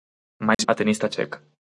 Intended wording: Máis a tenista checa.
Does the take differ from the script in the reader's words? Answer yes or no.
no